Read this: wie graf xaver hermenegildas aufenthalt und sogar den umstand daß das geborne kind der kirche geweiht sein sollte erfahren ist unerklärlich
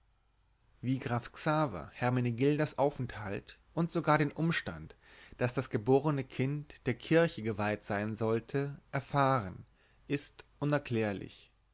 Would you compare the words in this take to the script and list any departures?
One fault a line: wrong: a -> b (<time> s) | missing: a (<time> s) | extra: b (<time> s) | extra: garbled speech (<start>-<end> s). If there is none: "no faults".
no faults